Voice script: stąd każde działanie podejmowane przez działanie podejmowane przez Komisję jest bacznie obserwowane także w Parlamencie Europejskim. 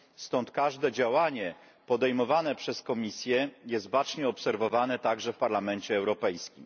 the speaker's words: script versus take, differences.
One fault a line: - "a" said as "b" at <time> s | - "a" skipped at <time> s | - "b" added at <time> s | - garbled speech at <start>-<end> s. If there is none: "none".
- "działanie podejmowane przez" skipped at 2.8 s